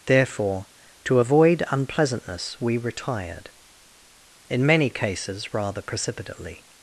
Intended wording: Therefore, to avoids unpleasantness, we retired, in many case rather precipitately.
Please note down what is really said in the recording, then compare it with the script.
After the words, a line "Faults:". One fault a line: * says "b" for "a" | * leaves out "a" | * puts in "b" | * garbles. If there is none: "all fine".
Therefore, to avoid unpleasantness, we retired, in many cases rather precipitately.
Faults:
* says "avoid" for "avoids"
* says "cases" for "case"